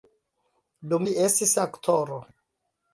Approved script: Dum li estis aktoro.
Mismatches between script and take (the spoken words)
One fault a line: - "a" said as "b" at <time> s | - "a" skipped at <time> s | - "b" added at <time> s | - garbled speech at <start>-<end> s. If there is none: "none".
none